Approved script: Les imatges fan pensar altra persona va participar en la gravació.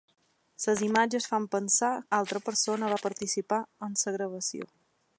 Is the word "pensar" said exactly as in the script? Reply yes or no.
yes